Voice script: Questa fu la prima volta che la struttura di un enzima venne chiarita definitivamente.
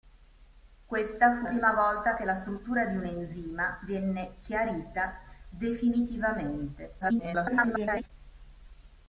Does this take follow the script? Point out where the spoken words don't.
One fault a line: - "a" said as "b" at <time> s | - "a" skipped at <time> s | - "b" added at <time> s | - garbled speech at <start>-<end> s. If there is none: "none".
- "la" skipped at 1.4 s
- garbled speech at 7.0-8.1 s